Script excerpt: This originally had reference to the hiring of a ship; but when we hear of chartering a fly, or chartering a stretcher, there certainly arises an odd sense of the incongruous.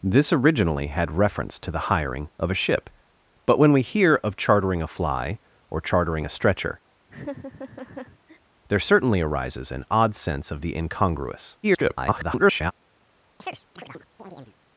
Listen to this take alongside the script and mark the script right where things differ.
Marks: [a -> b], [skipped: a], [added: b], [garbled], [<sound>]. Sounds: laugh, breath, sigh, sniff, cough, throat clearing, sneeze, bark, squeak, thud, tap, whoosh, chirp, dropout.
This originally had reference to the hiring of a ship; but when we hear of chartering a fly, or chartering a stretcher, [laugh] there certainly arises an odd sense of the incongruous. [garbled] [chirp]